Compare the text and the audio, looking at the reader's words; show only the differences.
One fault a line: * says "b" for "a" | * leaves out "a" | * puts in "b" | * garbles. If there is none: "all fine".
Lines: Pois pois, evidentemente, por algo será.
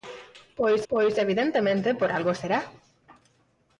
all fine